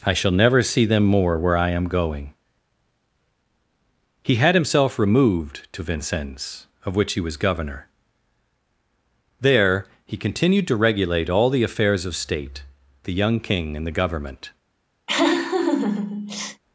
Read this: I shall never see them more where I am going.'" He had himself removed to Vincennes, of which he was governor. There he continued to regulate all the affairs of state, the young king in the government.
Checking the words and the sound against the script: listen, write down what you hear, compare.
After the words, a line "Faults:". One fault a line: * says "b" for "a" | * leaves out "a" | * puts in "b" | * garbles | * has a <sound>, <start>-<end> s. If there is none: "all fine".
I shall never see them more where I am going.'" He had himself removed to Vincennes, of which he was governor. There he continued to regulate all the affairs of state, the young king in the government.
Faults:
* has a laugh, 15.1-16.6 s